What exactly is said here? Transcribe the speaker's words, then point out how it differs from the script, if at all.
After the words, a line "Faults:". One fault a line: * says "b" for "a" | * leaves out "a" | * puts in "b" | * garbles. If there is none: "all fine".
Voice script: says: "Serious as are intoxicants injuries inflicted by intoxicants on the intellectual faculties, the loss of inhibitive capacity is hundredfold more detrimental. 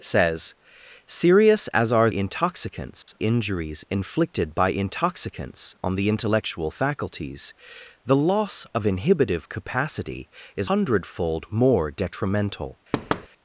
says: "Serious as are intoxicants injuries inflicted by intoxicants on the intellectual faculties, the loss of inhibitive capacity is hundredfold more detrimental.
Faults:
all fine